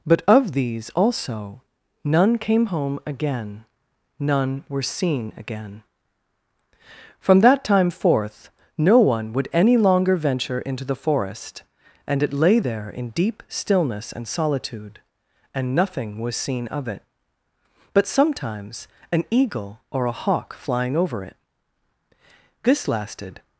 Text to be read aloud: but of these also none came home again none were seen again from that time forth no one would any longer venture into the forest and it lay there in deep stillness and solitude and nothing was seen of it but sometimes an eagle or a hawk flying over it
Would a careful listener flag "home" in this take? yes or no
no